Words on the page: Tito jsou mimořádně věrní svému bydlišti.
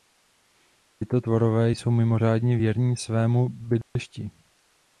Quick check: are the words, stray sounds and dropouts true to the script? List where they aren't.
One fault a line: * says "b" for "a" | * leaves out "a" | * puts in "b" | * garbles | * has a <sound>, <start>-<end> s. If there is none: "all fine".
* puts in "tvorové"
* has a dropout, 3.8-4.0 s